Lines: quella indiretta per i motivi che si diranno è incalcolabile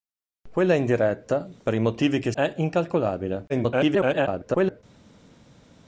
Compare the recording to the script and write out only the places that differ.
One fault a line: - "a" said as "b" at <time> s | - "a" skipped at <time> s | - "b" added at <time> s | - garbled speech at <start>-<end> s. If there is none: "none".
- "si diranno" skipped at 2.3 s
- garbled speech at 3.5-4.8 s